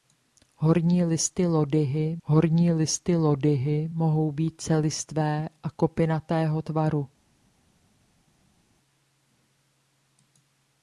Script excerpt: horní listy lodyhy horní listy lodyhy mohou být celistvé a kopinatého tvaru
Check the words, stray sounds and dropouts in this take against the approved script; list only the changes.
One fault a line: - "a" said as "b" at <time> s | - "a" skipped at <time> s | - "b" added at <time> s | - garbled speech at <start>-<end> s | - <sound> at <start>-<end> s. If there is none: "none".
none